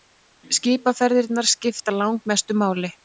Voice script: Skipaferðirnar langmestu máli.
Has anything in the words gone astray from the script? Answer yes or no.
yes